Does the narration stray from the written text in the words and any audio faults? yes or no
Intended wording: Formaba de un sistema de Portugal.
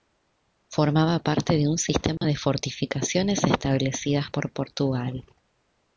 yes